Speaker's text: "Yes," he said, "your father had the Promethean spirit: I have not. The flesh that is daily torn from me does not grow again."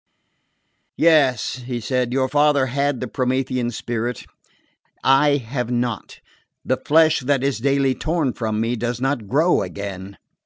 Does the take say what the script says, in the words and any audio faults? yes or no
yes